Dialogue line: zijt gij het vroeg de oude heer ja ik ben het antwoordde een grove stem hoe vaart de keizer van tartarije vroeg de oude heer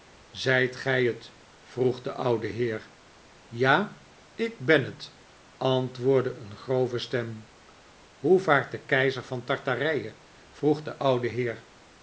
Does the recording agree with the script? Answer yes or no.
yes